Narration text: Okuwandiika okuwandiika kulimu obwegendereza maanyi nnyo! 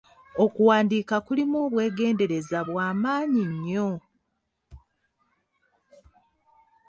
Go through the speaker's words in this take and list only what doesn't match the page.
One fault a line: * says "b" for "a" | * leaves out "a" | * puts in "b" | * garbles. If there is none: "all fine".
* leaves out "okuwandiika"
* puts in "bwa"